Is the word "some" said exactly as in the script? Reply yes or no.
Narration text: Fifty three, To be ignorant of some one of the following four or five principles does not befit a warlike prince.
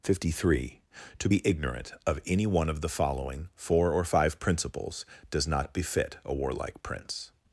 no